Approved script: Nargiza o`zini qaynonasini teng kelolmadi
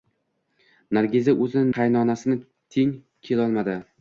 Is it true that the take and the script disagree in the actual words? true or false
false